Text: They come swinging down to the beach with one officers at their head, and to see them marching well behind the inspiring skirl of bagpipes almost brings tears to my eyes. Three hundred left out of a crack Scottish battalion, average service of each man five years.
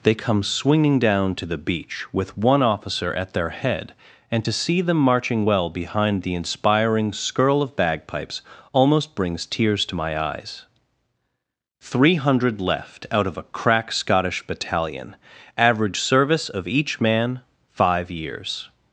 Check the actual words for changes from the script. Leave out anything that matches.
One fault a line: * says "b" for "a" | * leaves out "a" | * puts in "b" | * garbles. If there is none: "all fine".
* says "officer" for "officers"